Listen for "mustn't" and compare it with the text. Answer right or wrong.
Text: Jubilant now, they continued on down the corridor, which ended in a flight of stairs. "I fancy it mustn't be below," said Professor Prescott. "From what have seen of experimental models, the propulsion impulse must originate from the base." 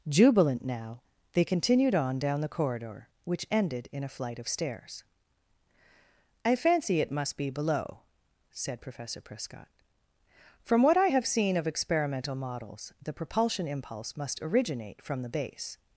wrong